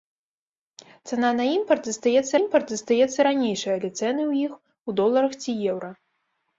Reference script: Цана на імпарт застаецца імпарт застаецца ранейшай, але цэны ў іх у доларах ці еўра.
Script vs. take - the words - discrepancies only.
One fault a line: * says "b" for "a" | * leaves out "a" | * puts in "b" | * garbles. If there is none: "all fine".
all fine